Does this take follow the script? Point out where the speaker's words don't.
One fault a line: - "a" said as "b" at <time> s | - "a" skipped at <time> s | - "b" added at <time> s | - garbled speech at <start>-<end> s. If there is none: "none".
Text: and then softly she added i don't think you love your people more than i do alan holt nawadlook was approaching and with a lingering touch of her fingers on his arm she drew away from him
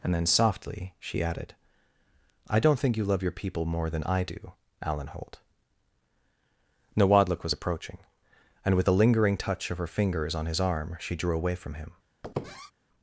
none